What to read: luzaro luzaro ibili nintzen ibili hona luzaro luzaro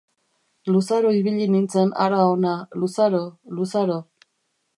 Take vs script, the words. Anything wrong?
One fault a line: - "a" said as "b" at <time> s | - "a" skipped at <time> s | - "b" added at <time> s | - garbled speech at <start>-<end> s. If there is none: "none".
- "luzaro" skipped at 1.1 s
- "ibili" said as "hara" at 2.0 s